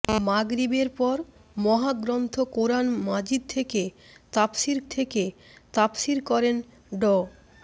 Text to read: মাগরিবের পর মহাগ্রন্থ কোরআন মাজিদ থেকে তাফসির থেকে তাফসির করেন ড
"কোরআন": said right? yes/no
yes